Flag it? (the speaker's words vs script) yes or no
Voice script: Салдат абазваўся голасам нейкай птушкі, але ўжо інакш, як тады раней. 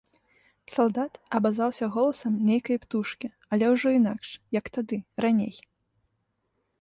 no